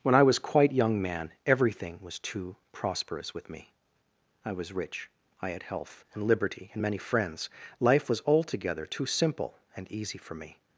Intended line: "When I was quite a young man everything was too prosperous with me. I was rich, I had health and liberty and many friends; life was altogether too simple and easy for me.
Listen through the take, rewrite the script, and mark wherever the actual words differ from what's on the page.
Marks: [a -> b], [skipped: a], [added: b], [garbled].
"When I was quite [skipped: a] young man everything was too prosperous with me. I was rich, I had health and liberty and many friends; life was altogether too simple and easy for me.